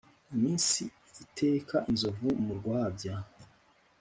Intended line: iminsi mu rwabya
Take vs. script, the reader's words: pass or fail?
fail